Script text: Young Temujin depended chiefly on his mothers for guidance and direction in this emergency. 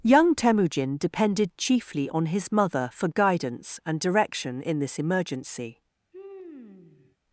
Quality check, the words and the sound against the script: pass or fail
fail